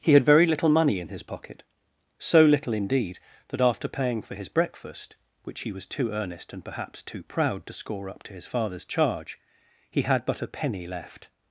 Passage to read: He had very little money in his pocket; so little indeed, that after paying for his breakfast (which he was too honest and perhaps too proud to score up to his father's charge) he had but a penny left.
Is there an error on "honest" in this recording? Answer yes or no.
yes